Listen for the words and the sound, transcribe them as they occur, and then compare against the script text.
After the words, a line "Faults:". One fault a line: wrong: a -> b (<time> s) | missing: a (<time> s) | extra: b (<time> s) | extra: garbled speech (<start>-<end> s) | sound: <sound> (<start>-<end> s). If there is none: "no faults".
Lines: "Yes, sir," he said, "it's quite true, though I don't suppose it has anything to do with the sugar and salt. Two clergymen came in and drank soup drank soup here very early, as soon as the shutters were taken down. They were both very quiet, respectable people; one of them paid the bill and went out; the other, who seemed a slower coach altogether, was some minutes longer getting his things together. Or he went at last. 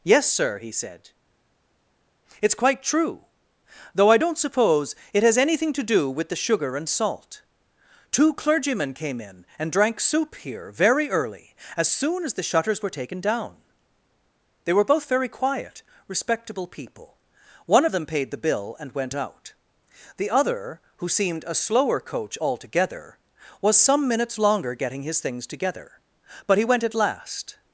"Yes, sir," he said, "it's quite true, though I don't suppose it has anything to do with the sugar and salt. Two clergymen came in and drank soup here very early, as soon as the shutters were taken down. They were both very quiet, respectable people; one of them paid the bill and went out; the other, who seemed a slower coach altogether, was some minutes longer getting his things together. But he went at last.
Faults:
missing: drank soup (10.3 s)
wrong: Or -> But (26.4 s)